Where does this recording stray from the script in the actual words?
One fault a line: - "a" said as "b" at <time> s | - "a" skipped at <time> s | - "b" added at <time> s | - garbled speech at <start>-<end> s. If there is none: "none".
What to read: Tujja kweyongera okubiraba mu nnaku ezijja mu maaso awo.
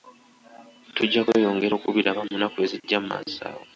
none